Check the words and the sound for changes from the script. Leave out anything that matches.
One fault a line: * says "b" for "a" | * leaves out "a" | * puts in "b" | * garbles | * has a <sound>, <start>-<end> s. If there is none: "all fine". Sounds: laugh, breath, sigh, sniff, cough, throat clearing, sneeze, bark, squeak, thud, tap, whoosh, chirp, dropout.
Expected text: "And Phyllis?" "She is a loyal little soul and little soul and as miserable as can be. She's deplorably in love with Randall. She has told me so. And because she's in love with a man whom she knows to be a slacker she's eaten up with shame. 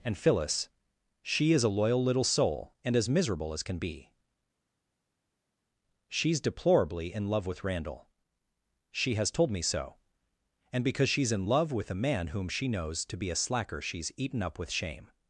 * leaves out "little soul and"